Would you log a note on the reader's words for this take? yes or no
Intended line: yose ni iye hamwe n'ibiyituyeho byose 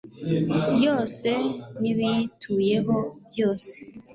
yes